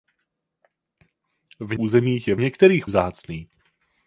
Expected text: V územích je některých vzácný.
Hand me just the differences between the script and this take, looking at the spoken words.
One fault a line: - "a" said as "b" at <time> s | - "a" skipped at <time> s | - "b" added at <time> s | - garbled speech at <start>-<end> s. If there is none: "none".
none